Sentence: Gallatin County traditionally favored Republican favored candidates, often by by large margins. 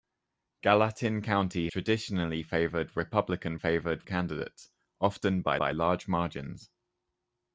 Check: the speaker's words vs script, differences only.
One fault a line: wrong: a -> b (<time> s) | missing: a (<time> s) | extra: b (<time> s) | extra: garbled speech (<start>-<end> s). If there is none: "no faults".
no faults